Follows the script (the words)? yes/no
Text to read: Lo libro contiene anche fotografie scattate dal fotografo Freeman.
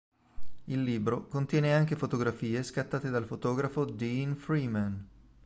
no